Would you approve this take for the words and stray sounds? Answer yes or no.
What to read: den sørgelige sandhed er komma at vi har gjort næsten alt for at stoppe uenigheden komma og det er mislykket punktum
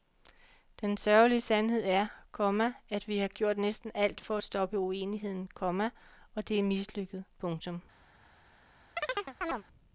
no